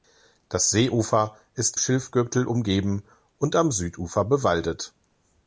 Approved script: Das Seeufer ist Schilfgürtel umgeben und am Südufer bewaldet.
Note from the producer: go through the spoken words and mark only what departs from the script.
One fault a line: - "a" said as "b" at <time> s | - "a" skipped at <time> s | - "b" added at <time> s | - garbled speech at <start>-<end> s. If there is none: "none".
none